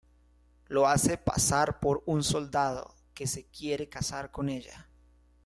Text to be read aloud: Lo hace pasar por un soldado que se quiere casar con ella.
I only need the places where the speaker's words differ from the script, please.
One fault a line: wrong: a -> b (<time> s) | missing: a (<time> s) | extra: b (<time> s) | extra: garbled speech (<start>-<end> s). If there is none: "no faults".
no faults